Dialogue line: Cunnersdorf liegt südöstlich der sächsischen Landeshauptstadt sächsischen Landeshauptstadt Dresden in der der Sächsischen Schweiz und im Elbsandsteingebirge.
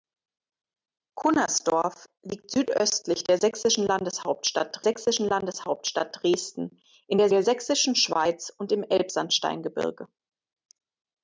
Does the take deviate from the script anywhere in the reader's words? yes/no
no